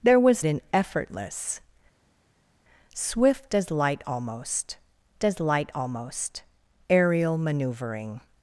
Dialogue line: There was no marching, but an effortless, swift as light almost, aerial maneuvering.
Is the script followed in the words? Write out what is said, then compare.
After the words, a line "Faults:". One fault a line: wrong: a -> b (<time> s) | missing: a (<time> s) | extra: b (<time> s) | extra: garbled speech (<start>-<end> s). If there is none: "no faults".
There was an effortless, swift as light almost as light almost, aerial maneuvering.
Faults:
wrong: no marching but an effortless swift -> an effortless swift as light almost (0.4 s)